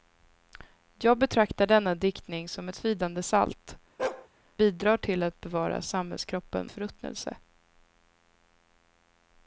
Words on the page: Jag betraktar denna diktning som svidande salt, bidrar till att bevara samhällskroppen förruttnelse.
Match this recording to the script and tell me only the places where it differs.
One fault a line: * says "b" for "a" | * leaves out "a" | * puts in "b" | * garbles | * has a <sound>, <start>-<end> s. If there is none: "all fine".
* has a bark, 4.0-4.3 s